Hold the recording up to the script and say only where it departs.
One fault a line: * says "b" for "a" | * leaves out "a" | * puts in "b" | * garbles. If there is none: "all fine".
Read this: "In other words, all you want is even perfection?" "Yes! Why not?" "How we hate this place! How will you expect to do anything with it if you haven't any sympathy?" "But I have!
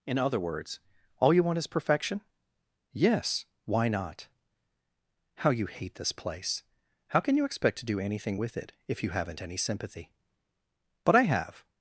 * leaves out "even"
* says "you" for "we"
* says "can" for "will"